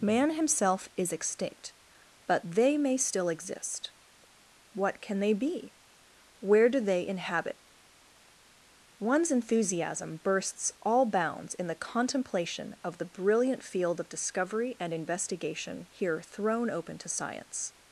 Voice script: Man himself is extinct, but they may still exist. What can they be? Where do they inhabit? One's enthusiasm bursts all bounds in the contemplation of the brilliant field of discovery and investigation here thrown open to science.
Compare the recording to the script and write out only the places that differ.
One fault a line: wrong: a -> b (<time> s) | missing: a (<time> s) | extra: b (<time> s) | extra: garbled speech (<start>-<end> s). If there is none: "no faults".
no faults